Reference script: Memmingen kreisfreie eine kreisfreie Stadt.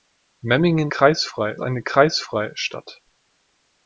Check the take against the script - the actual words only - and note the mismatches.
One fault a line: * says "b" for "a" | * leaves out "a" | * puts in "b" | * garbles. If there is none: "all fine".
all fine